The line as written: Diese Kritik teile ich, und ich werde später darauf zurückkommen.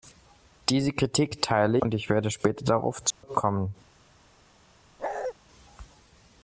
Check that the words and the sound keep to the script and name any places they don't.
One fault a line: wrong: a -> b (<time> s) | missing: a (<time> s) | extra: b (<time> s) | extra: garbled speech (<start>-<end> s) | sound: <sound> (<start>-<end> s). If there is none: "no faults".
missing: ich (1.8 s)
sound: dropout (3.1-3.2 s)
sound: bark (5.0-5.3 s)